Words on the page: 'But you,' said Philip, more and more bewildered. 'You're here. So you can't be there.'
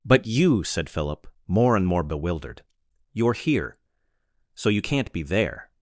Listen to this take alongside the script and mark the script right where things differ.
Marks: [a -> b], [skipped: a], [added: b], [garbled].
'But you,' said Philip, more and more bewildered. 'You're here. So you can't be there.'